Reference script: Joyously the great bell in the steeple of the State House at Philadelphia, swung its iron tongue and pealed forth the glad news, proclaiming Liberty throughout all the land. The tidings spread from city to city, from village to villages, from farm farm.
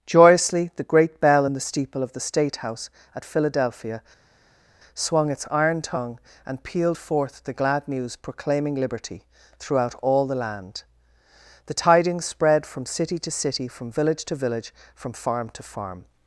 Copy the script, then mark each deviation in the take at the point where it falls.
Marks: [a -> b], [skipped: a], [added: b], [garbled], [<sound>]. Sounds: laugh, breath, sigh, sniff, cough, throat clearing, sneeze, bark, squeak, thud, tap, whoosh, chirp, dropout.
Joyously the great bell in the steeple of the State House at Philadelphia, swung its iron tongue and pealed forth the glad news, proclaiming Liberty throughout all the land. The tidings spread from city to city, from village to [villages, -> village] from farm [added: to] farm.